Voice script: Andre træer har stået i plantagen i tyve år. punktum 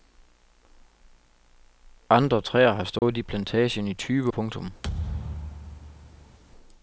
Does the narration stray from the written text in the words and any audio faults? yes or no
yes